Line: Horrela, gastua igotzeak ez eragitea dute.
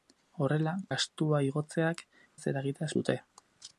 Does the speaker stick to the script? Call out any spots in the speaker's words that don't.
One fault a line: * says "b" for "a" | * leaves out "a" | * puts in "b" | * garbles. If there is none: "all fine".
all fine